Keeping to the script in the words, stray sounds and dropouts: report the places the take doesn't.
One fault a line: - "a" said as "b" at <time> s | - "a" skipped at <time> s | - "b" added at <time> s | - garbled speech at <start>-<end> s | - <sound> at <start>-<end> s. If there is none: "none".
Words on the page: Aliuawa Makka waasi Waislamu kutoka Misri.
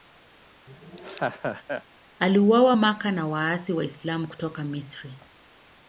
- laugh at 0.7-1.8 s
- "na" added at 3.1 s